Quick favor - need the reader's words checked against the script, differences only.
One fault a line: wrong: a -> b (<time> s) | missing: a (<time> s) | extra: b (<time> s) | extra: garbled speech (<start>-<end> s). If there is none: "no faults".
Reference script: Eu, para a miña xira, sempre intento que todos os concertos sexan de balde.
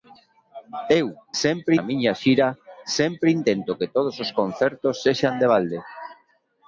wrong: para -> sempre (1.4 s)